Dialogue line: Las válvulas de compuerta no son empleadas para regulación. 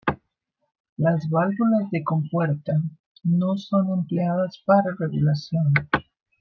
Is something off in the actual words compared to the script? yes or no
no